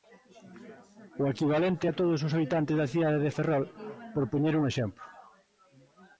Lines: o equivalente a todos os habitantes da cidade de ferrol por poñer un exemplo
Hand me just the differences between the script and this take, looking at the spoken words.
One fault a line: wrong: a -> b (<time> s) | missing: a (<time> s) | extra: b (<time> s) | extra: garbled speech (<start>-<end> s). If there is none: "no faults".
no faults